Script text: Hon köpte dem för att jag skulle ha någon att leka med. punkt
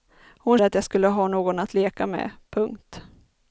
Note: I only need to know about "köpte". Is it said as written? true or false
false